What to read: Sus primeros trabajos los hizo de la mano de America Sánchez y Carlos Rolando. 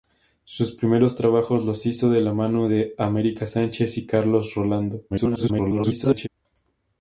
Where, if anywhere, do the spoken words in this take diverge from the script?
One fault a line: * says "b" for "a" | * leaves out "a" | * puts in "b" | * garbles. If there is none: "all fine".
* garbles